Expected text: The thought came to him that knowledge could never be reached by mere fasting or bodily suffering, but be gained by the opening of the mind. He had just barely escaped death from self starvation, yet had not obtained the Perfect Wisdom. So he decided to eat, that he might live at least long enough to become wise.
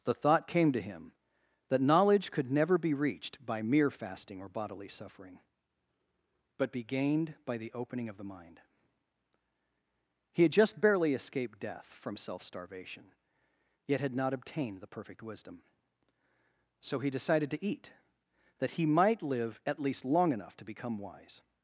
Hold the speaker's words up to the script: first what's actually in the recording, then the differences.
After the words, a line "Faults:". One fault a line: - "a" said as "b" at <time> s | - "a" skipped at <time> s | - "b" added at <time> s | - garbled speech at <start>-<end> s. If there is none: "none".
The thought came to him that knowledge could never be reached by mere fasting or bodily suffering, but be gained by the opening of the mind. He had just barely escaped death from self starvation, yet had not obtained the Perfect Wisdom. So he decided to eat, that he might live at least long enough to become wise.
Faults:
none